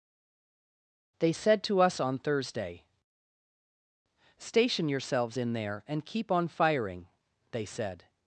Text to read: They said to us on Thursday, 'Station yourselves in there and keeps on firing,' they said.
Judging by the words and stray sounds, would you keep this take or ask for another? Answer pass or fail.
fail